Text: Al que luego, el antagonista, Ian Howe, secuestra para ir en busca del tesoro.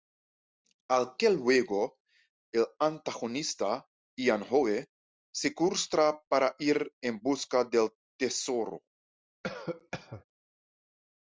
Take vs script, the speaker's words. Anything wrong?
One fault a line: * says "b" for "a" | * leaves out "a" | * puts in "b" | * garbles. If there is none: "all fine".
all fine